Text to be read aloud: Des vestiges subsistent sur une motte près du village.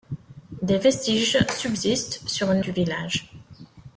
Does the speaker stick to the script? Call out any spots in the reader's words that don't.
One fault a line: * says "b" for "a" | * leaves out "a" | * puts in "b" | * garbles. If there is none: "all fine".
* leaves out "motte près"